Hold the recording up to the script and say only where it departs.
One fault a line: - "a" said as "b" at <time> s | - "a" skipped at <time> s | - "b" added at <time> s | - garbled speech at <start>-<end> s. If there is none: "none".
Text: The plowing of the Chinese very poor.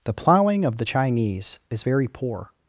- "is" added at 1.7 s